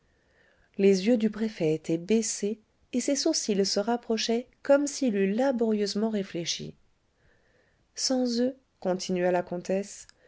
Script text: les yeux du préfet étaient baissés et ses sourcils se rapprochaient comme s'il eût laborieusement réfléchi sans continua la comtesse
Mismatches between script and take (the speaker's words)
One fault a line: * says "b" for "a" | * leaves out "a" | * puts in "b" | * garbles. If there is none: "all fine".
* puts in "eux"